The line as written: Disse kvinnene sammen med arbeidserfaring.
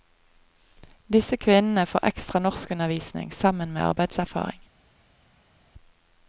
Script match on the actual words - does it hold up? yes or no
no